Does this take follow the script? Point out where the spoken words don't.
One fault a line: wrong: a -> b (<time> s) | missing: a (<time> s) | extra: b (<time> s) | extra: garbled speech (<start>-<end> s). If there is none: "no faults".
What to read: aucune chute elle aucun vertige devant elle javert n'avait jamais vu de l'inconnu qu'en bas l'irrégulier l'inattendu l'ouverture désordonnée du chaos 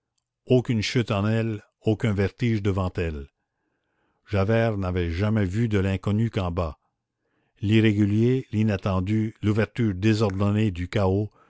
extra: en (1.1 s)